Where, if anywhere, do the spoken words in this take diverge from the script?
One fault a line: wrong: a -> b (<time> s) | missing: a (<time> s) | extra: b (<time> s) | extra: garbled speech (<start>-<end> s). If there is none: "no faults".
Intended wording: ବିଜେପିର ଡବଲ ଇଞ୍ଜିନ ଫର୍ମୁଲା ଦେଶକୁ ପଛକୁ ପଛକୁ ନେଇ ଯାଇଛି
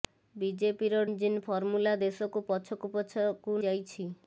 missing: ଡବଲ (1.0 s)
missing: ନେଇ (3.6 s)